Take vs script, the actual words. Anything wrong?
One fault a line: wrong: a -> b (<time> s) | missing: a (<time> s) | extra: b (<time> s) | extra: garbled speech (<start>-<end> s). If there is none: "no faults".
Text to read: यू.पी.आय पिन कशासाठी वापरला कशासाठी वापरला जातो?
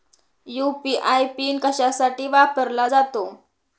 missing: कशासाठी वापरला (2.9 s)